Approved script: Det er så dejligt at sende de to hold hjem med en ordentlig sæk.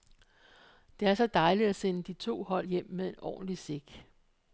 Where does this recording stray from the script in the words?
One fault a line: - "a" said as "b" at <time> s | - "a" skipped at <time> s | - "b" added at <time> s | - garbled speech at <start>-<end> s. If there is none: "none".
none